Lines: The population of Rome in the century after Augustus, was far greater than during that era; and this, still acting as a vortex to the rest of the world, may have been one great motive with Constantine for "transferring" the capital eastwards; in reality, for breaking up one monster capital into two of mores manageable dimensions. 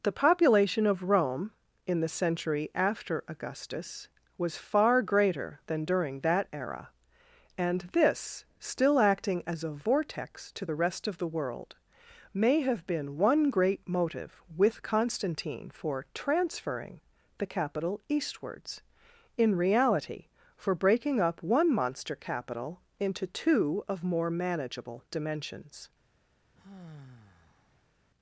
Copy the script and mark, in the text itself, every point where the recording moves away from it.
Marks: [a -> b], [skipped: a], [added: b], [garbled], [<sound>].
The population of Rome in the century after Augustus, was far greater than during that era; and this, still acting as a vortex to the rest of the world, may have been one great motive with Constantine for "transferring" the capital eastwards; in reality, for breaking up one monster capital into two of [mores -> more] manageable dimensions. [sigh]